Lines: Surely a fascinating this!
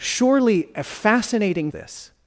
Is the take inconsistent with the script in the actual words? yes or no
no